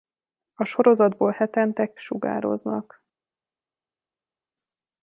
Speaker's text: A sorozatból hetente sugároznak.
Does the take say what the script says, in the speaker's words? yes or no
yes